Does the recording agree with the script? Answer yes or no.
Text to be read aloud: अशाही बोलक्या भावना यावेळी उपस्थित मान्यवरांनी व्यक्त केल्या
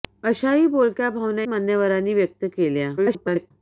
no